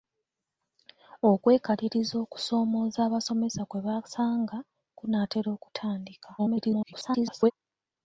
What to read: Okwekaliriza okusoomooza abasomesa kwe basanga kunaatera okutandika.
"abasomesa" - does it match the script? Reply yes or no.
yes